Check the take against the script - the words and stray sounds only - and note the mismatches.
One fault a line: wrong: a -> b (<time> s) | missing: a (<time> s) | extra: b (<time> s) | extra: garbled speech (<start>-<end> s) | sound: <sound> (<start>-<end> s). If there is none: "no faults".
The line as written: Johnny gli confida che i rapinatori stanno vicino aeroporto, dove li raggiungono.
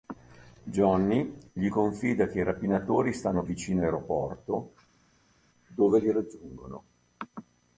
no faults